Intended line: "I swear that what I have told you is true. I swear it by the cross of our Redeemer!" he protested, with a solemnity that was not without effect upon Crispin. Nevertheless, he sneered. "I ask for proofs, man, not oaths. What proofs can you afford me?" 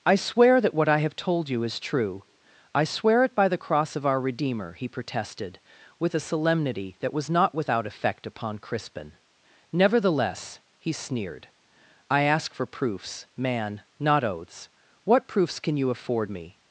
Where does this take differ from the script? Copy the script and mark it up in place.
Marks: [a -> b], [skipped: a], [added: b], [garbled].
"I swear that what I have told you is true. I swear it by the cross of our Redeemer!" he protested, with a solemnity that was not without effect upon Crispin. Nevertheless, he sneered. "I ask for proofs, man, not oaths. What proofs can you afford me?"